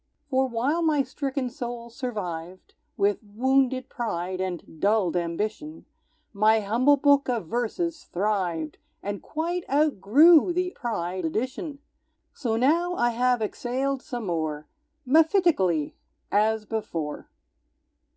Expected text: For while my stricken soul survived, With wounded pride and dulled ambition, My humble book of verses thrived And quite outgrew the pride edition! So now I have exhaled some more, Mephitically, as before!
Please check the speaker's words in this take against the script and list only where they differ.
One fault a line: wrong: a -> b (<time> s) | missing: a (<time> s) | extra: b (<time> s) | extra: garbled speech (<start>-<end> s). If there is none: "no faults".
no faults